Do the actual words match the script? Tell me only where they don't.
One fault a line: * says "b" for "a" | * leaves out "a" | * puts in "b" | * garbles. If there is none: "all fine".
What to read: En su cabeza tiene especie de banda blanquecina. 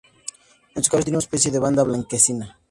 all fine